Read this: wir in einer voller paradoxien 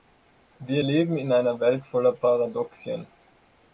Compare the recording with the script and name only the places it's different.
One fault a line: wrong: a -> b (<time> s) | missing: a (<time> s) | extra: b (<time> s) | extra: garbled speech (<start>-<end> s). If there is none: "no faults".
extra: leben (0.8 s)
extra: welt (1.6 s)